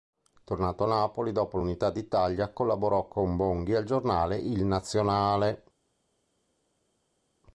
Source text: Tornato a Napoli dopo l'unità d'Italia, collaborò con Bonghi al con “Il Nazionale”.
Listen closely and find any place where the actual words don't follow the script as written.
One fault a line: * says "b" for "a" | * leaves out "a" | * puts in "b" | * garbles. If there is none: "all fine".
* says "giornale" for "con"